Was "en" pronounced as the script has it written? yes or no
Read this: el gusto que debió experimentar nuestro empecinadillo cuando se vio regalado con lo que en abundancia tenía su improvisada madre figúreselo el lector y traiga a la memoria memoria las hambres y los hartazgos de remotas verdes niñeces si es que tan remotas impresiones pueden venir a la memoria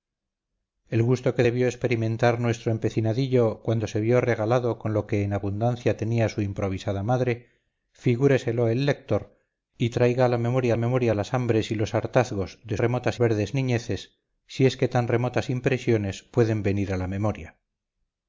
yes